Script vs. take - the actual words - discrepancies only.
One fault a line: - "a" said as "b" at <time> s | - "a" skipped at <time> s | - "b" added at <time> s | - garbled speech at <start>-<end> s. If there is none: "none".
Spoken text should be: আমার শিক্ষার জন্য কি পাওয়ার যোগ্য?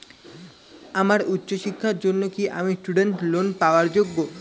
- "উচ্চ" added at 1.3 s
- "আমি স্টুডেন্ট লোন" added at 2.6 s